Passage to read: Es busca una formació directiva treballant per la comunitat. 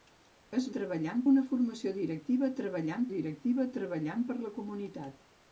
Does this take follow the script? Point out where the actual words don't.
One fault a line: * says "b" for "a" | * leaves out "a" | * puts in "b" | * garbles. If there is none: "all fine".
* says "treballant" for "busca"
* puts in "directiva treballant"